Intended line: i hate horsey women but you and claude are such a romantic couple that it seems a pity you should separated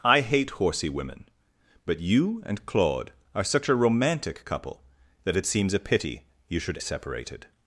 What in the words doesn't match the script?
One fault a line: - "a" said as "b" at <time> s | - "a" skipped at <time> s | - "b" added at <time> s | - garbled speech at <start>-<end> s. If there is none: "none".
none